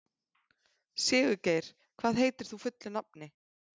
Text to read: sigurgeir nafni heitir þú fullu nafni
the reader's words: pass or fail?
fail